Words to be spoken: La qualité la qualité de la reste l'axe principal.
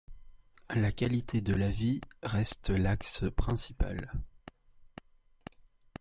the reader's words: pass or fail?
fail